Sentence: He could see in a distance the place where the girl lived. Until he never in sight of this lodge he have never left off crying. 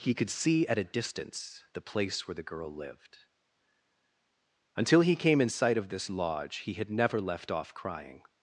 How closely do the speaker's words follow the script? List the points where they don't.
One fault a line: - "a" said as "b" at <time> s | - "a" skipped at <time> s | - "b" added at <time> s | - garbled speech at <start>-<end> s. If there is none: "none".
- "in" said as "at" at 0.7 s
- "never" said as "came" at 5.2 s
- "have" said as "had" at 6.7 s